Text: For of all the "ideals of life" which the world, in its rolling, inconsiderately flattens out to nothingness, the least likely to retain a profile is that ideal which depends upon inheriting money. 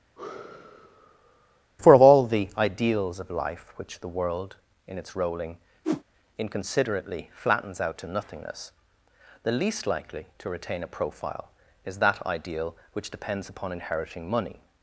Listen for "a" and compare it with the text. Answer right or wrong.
right